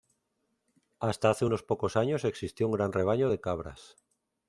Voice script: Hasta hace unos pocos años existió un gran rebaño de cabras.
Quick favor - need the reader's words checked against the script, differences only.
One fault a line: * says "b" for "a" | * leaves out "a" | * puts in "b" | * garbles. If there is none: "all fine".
all fine